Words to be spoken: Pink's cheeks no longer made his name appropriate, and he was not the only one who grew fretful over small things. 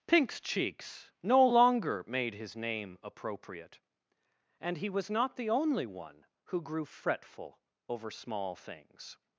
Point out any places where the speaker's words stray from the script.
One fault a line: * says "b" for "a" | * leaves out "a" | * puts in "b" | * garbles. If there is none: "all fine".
all fine